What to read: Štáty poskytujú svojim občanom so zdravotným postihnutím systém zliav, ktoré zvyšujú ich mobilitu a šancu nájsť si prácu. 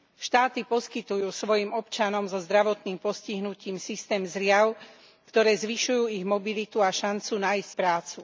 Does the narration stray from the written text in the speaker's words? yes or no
yes